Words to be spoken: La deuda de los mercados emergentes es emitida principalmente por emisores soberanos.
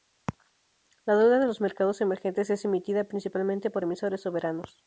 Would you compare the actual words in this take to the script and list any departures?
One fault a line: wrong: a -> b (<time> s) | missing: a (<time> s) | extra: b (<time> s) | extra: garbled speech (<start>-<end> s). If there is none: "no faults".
no faults